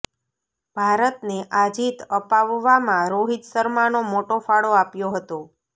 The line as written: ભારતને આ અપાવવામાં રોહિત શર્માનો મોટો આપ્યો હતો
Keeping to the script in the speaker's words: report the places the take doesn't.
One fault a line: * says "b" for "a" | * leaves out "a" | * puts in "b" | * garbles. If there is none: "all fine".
* puts in "જીત"
* puts in "ફાળો"